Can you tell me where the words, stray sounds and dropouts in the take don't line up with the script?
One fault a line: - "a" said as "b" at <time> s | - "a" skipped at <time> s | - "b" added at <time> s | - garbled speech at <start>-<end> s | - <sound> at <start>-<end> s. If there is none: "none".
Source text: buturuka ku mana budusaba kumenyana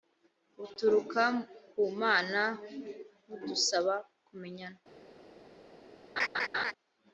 - laugh at 6.2-6.7 s